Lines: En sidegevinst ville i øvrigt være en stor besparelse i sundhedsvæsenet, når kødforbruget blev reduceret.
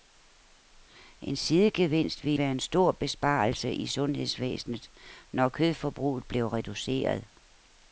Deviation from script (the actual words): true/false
true